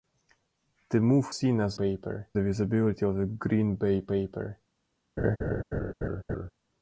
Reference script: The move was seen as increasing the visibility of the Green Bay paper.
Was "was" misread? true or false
true